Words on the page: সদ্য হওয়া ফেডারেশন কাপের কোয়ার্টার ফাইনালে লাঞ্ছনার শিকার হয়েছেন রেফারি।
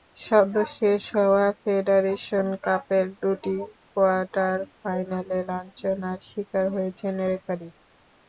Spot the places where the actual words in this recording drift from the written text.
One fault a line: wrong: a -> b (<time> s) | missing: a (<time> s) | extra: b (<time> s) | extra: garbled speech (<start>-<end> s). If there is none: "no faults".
extra: শেষ (0.8 s)
extra: দুটি (3.2 s)